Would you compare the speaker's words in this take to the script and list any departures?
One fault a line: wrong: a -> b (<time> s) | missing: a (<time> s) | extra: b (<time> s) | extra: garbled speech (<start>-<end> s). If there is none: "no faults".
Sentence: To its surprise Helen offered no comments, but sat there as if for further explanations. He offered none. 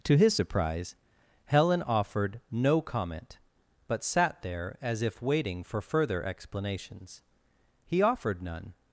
wrong: its -> his (0.2 s)
wrong: comments -> comment (2.8 s)
extra: waiting (5.2 s)